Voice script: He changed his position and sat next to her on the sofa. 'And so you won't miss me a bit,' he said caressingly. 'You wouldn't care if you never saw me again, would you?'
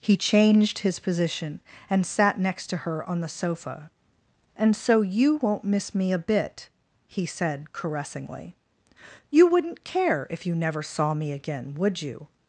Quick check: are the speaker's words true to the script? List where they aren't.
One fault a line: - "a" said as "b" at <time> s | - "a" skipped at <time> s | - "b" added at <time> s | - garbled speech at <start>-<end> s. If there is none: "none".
none